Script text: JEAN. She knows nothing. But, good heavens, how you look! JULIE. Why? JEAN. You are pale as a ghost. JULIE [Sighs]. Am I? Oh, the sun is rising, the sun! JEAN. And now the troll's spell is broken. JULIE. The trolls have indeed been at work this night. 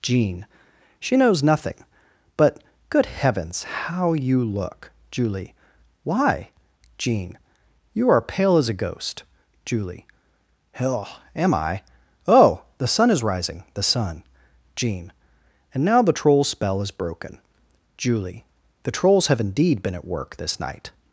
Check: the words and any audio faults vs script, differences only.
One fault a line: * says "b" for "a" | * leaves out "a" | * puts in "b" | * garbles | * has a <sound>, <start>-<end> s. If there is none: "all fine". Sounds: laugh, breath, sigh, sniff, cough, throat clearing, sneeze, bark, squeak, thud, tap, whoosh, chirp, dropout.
* says "Hell" for "Sighs"